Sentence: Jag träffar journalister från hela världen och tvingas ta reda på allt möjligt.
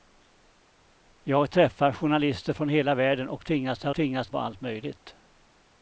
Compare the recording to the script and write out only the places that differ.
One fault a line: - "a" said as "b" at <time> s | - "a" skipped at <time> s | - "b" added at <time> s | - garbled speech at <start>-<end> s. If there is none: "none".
- "reda" said as "tvingas" at 3.9 s